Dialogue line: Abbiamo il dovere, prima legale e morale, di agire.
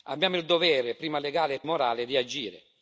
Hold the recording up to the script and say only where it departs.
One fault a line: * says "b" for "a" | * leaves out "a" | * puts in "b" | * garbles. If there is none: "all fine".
all fine